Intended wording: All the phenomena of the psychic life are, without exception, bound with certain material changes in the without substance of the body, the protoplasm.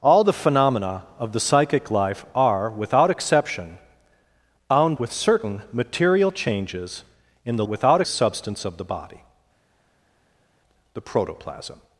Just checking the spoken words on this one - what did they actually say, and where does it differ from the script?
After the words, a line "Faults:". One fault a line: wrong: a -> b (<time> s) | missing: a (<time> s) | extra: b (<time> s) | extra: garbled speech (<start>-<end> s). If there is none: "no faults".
All the phenomena of the psychic life are, without exception, bound with certain material changes in the without substance of the body, the protoplasm.
Faults:
no faults